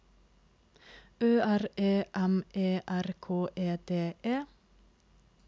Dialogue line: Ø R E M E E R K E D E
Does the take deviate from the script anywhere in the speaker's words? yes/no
yes